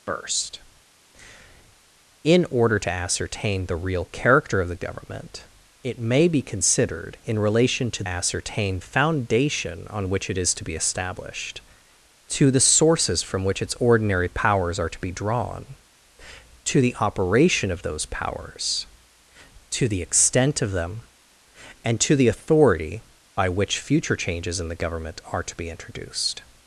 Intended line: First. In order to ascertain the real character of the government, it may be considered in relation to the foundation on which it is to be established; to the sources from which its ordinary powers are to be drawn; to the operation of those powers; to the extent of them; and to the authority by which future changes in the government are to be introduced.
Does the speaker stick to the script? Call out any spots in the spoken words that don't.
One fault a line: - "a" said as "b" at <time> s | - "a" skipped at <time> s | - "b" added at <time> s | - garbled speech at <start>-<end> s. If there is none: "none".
- "the" said as "ascertain" at 8.0 s